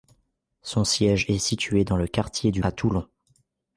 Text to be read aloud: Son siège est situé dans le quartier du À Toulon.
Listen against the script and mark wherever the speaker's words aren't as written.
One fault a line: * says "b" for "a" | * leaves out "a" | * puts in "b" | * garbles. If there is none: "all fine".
all fine